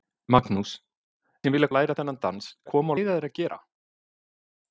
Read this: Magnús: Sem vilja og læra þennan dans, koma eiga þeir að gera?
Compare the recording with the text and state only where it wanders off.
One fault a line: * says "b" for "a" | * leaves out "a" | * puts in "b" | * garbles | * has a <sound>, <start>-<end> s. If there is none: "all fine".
all fine